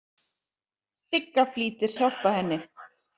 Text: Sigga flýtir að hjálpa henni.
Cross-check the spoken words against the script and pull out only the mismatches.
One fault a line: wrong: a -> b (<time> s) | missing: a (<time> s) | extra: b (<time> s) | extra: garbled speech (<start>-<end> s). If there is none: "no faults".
no faults